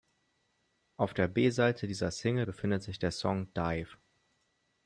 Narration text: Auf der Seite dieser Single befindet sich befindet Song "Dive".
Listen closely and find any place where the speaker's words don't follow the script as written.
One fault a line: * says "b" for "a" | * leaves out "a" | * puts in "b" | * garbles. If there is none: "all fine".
* puts in "B"
* says "der" for "befindet"